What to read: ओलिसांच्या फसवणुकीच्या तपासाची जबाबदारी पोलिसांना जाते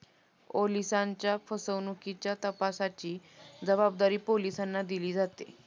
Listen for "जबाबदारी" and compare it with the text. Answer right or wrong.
right